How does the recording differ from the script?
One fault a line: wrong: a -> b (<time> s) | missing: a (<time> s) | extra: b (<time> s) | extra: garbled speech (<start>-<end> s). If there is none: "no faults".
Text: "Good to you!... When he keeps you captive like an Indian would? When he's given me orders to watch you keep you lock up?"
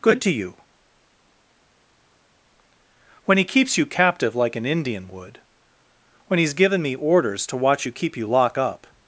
no faults